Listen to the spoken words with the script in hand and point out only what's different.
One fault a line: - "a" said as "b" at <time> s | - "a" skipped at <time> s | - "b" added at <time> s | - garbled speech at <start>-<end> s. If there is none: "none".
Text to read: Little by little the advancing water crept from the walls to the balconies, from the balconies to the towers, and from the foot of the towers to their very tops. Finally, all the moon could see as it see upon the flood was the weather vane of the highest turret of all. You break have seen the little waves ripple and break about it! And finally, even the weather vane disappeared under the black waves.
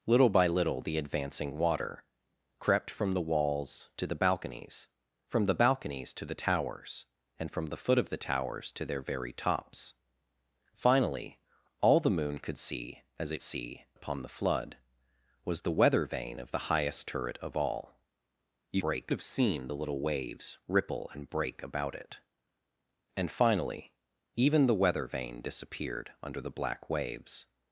none